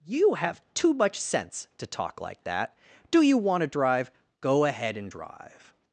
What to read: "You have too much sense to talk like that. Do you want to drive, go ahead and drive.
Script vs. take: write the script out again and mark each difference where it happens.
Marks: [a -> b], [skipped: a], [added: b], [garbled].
"You have too much sense to talk like that. Do you want to drive, go ahead and drive.